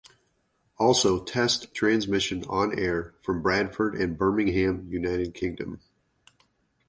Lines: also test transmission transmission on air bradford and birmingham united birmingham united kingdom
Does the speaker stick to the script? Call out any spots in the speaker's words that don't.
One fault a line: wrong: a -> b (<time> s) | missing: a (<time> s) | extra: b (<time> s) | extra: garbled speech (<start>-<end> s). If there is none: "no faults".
missing: transmission (2.4 s)
extra: from (3.2 s)
missing: birmingham united (5.3 s)